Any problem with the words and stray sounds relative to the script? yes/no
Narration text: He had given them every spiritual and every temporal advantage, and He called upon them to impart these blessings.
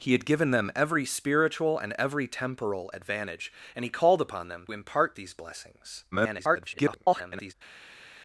yes